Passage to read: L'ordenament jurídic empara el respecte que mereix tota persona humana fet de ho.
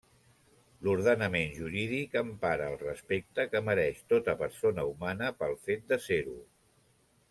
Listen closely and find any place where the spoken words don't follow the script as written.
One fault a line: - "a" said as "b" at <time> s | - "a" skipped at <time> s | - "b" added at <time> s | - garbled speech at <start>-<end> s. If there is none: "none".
- "pel" added at 5.4 s
- "ser" added at 6.1 s